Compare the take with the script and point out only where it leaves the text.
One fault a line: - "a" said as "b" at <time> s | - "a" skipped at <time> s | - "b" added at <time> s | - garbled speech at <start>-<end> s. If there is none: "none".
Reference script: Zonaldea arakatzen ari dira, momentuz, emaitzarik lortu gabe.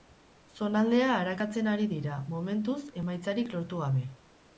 none